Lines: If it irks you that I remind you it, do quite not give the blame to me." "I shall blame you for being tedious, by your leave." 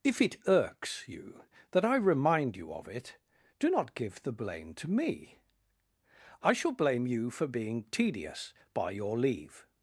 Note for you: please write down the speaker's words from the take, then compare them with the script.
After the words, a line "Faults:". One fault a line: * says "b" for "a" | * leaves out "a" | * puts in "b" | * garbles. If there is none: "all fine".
If it irks you that I remind you of it, do not give the blame to me." "I shall blame you for being tedious, by your leave."
Faults:
* puts in "of"
* leaves out "quite"